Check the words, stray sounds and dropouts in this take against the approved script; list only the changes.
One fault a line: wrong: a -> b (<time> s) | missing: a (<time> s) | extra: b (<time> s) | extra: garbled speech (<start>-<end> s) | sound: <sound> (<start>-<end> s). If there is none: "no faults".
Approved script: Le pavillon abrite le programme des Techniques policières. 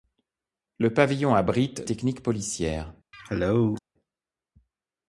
missing: le programme des (1.8 s)
sound: cough (3.1-3.8 s)